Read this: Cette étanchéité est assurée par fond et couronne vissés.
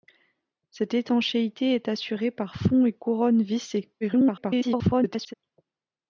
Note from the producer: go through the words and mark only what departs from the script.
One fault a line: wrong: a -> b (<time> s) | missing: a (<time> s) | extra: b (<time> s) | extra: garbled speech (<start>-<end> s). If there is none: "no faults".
extra: garbled speech (4.0-5.3 s)